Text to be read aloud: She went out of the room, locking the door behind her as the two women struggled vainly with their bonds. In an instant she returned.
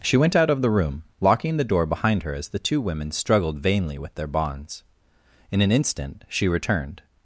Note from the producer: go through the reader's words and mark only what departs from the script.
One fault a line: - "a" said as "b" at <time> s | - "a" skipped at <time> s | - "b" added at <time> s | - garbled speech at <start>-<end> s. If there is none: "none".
none